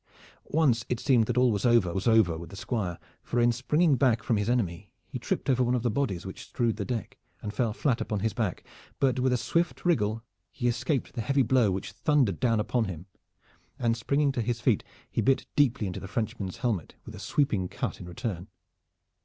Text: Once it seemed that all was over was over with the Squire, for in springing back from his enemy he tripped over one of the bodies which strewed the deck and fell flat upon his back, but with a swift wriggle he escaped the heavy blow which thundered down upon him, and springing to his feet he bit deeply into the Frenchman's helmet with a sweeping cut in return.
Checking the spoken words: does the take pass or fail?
pass